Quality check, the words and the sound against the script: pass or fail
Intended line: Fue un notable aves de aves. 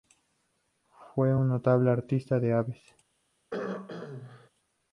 fail